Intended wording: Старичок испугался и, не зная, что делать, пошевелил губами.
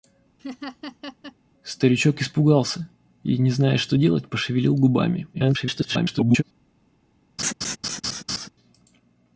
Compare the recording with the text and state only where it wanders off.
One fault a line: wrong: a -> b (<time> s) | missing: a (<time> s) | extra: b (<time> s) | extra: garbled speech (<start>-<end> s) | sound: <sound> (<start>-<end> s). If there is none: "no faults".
sound: laugh (0.4-1.4 s)
extra: garbled speech (5.3-6.4 s)
sound: laugh (7.4-8.5 s)